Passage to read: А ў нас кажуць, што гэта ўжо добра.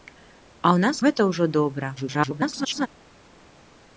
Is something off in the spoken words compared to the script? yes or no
yes